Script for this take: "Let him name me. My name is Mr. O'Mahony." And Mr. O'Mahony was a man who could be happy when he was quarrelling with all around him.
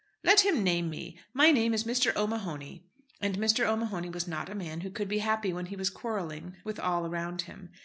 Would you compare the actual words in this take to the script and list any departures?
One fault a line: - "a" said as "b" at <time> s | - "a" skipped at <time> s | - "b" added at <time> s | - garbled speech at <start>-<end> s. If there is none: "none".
- "not" added at 4.3 s